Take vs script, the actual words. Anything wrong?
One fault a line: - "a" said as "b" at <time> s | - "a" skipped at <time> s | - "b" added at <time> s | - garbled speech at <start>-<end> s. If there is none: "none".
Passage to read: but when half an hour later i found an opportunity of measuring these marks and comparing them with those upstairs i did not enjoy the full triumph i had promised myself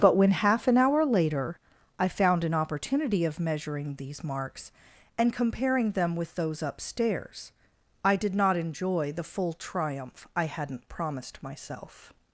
- "had" said as "hadn't" at 10.5 s